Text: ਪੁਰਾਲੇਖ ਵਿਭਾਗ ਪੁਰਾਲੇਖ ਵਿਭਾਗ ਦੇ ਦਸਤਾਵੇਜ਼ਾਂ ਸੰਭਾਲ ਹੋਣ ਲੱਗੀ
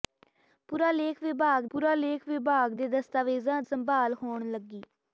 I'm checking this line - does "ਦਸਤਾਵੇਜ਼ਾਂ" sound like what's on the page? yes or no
yes